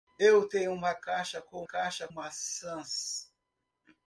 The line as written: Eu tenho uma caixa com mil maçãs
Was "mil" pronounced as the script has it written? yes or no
no